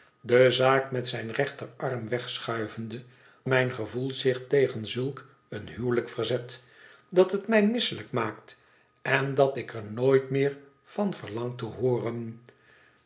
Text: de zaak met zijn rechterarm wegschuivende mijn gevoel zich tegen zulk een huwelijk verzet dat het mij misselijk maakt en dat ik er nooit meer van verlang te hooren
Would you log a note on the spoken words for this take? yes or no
no